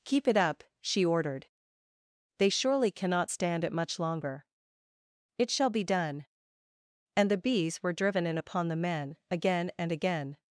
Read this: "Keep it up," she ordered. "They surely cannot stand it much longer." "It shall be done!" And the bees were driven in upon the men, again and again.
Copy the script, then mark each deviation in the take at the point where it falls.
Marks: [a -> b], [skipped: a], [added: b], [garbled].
"Keep it up," she ordered. "They surely cannot stand it much longer." "It shall be done!" And the bees were driven in upon the men, again and again.